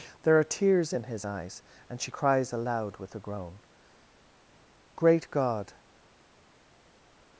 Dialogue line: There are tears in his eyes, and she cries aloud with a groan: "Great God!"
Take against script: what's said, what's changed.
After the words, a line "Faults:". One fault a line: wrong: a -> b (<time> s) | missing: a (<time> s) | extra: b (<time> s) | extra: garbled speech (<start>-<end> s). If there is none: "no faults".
There are tears in his eyes, and she cries aloud with a groan: "Great God!"
Faults:
no faults